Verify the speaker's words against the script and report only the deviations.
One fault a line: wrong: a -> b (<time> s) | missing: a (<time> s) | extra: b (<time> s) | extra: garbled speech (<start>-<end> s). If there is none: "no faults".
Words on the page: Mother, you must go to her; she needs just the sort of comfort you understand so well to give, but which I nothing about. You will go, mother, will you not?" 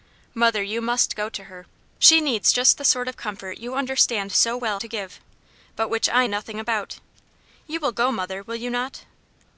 no faults